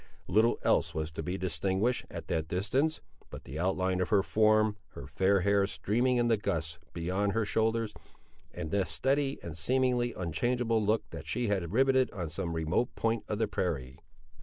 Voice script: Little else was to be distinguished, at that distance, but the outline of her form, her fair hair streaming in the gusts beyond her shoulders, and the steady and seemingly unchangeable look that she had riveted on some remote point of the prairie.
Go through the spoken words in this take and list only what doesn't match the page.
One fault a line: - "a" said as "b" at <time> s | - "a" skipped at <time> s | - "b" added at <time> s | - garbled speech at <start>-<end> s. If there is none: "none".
none